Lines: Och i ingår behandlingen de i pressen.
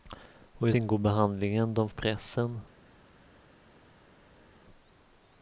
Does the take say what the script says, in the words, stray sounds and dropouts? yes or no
yes